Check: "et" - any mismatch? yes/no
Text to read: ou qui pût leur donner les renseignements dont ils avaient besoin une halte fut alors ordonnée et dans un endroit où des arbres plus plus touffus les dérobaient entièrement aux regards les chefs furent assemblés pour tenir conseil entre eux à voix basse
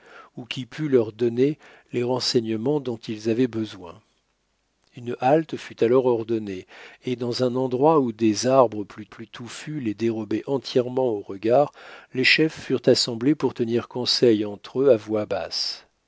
no